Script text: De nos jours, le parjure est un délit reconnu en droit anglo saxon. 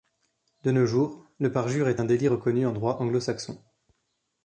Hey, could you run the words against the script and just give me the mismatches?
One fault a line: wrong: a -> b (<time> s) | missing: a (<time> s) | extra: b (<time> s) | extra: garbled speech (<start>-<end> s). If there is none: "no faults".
no faults